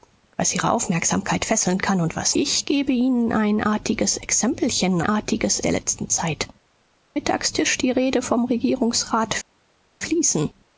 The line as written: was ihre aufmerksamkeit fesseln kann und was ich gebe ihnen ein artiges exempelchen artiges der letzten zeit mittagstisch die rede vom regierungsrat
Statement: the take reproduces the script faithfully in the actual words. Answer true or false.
true